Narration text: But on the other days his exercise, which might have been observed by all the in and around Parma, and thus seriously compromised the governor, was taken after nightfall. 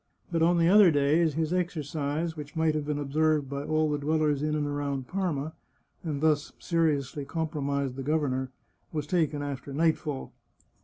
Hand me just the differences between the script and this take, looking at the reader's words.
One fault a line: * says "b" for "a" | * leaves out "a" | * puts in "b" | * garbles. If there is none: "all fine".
* puts in "dwellers"